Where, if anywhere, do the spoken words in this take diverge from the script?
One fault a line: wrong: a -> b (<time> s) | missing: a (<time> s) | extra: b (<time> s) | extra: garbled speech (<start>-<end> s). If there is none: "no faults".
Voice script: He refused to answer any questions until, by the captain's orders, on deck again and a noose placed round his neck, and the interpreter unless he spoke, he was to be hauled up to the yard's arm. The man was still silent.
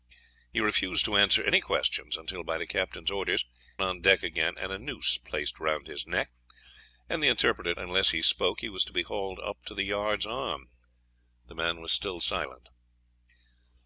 no faults